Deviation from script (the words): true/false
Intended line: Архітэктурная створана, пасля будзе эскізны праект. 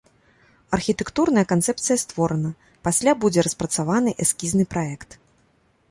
true